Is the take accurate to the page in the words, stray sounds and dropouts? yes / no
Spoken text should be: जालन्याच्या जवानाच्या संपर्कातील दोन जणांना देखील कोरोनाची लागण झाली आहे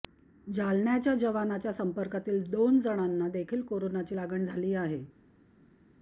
yes